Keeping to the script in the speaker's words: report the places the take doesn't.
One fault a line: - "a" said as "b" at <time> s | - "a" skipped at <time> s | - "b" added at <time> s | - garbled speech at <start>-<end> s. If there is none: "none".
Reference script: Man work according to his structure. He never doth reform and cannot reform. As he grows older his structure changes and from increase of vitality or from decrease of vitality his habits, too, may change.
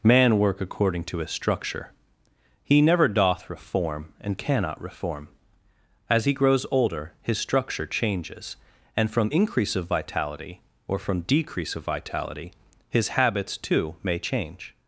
none